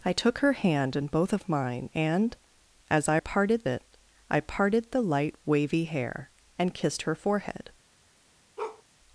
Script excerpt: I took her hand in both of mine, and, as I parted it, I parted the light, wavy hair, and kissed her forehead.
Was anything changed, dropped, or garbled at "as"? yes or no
no